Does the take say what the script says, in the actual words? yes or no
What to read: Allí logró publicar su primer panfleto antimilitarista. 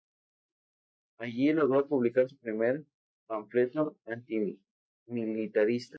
yes